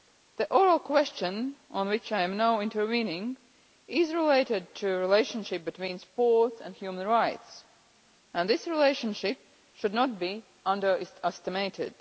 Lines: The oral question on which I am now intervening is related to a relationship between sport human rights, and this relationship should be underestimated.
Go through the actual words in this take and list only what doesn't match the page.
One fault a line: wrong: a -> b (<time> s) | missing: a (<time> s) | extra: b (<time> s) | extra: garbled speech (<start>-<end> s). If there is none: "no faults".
wrong: a -> the (4.8 s)
extra: and (6.6 s)
extra: not (9.9 s)